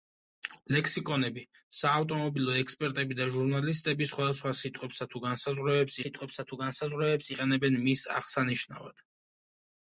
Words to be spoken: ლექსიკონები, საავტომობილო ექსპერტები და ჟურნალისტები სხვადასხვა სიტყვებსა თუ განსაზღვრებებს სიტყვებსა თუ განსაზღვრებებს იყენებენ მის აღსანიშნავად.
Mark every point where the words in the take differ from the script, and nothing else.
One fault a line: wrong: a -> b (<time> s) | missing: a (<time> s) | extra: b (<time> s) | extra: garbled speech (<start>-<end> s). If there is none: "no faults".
no faults